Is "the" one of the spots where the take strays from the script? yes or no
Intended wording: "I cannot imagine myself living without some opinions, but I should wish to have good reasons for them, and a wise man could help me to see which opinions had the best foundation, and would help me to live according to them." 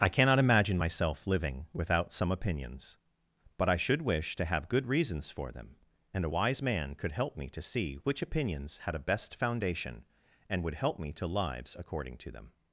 yes